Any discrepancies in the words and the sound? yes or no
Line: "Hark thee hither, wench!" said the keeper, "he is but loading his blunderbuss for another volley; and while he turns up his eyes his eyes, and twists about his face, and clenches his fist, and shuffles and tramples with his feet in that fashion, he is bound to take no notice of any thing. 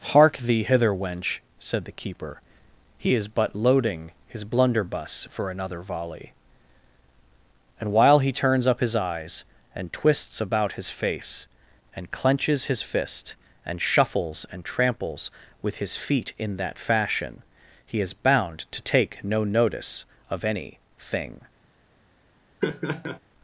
yes